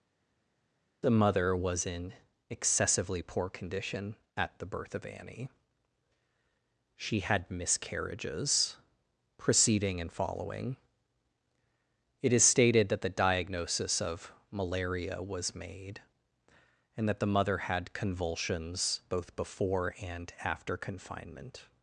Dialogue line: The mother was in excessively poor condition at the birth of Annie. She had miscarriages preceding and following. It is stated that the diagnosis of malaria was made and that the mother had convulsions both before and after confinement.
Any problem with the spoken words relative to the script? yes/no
no